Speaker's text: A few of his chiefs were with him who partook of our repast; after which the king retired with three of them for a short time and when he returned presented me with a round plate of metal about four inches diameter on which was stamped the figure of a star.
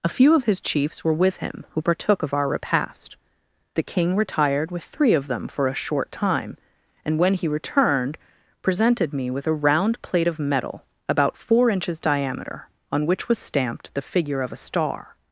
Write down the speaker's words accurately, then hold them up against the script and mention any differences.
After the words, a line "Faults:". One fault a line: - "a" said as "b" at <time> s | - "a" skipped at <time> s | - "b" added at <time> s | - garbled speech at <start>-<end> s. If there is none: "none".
A few of his chiefs were with him who partook of our repast; the king retired with three of them for a short time and when he returned presented me with a round plate of metal about four inches diameter on which was stamped the figure of a star.
Faults:
- "after which" skipped at 3.2 s